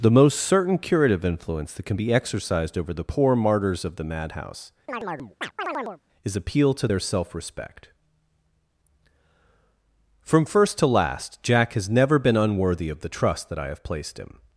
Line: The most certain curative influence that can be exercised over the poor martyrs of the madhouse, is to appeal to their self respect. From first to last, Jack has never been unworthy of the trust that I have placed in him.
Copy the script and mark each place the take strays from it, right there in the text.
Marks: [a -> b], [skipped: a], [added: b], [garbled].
The most certain curative influence that can be exercised over the poor martyrs of the madhouse, is [skipped: to] appeal to their self respect. From first to last, Jack has never been unworthy of the trust that I have placed [skipped: in] him.